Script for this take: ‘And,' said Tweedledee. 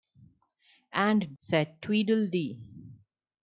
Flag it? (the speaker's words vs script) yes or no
no